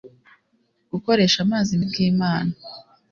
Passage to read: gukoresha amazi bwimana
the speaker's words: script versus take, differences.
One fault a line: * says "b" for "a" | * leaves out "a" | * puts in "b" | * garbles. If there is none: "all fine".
all fine